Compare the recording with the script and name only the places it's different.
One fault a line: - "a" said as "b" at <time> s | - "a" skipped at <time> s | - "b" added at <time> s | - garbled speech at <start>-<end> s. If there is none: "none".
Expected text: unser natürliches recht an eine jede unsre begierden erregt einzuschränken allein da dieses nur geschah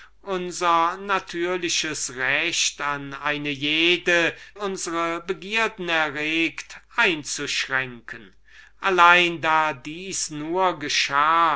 none